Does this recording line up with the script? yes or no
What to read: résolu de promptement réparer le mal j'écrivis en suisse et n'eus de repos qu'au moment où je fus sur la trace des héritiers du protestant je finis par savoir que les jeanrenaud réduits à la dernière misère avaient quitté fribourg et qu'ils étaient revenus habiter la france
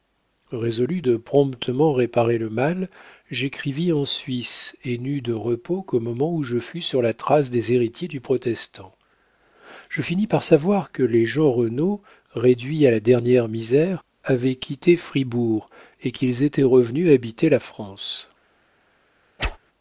yes